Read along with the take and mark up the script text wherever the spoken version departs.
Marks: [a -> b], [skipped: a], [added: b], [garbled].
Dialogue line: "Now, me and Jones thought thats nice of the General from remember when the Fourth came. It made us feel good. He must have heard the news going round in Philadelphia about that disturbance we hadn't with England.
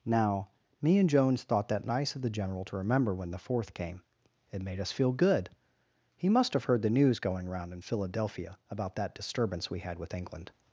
"Now, me and Jones thought [thats -> that] nice of the General [from -> to] remember when the Fourth came. It made us feel good. He must have heard the news going round in Philadelphia about that disturbance we [hadn't -> had] with England.